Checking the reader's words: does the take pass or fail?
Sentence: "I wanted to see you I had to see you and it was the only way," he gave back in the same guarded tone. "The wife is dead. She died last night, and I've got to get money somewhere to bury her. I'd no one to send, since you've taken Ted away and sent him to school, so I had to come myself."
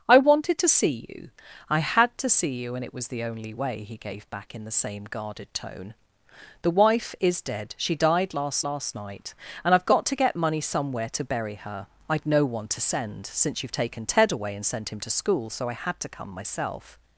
fail